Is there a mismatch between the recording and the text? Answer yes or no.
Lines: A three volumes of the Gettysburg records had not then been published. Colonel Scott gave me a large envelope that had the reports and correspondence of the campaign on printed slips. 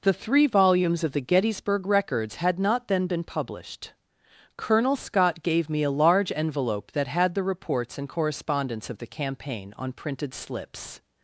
yes